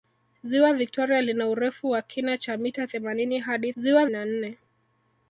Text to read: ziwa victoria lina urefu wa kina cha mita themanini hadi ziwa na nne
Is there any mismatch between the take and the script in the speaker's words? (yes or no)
no